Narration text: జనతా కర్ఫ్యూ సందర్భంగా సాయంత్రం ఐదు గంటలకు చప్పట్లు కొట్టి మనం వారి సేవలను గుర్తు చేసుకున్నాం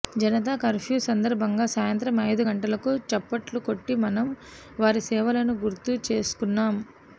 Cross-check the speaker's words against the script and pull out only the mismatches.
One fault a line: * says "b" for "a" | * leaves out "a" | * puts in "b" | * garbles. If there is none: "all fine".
all fine